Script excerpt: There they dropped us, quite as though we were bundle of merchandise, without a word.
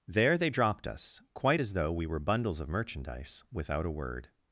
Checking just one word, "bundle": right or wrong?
wrong